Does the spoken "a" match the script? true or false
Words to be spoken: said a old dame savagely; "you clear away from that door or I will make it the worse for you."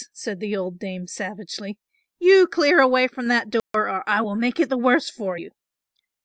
false